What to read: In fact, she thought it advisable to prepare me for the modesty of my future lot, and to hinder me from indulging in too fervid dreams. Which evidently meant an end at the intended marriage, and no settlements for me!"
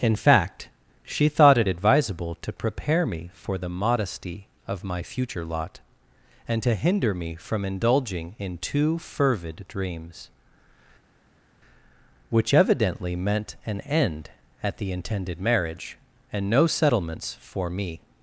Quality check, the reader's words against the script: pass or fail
pass